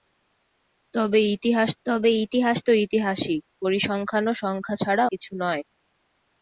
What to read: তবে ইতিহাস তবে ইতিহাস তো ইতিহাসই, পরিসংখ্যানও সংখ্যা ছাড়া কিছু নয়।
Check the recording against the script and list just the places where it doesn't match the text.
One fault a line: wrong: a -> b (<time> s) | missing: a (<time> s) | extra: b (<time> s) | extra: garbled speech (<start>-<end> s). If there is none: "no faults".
no faults